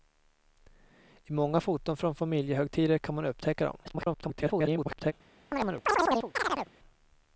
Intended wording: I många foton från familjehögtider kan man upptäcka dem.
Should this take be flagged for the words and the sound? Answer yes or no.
yes